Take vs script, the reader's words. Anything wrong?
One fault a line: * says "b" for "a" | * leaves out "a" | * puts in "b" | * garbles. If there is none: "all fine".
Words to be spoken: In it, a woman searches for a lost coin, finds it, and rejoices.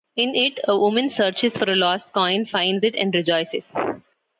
all fine